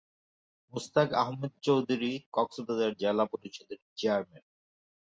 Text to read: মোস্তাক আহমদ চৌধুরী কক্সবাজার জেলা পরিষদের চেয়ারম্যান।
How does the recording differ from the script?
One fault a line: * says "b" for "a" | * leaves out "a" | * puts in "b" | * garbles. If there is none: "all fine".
all fine